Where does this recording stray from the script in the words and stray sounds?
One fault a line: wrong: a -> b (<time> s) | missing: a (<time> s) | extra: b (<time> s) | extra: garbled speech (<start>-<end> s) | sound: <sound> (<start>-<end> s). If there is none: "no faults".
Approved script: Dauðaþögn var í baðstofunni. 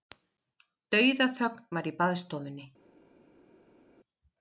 no faults